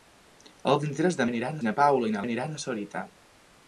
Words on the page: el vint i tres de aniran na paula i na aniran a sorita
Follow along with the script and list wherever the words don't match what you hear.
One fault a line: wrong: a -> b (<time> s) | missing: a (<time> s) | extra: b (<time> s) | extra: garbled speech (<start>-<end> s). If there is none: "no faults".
no faults